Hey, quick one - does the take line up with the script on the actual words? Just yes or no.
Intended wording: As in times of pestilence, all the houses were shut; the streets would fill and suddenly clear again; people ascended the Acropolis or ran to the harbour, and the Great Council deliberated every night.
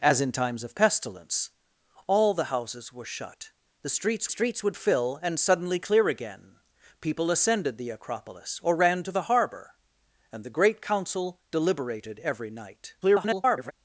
no